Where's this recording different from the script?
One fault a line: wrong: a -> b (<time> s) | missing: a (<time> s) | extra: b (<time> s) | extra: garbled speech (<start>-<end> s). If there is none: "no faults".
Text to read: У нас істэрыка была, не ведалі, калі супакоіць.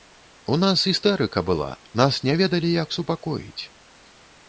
extra: нас (2.0 s)
wrong: калі -> як (2.8 s)